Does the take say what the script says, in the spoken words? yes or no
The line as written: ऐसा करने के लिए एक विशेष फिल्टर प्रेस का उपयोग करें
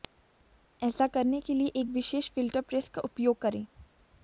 yes